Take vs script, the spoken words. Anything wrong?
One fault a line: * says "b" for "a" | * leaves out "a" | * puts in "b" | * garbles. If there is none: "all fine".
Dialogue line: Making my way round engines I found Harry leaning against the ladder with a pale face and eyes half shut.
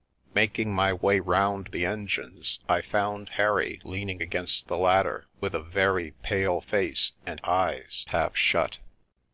* puts in "the"
* puts in "very"